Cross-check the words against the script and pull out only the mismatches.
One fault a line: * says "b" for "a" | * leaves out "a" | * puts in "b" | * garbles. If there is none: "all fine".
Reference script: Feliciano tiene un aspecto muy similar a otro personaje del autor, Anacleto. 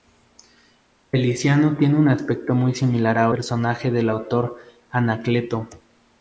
* leaves out "otro"